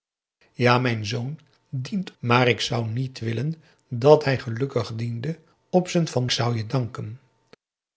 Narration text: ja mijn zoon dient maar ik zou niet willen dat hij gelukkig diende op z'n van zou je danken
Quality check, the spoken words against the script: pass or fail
pass